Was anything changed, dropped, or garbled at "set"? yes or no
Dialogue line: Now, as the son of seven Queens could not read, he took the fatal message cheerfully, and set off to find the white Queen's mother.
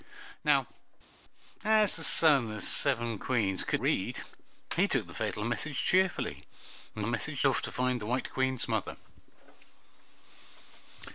yes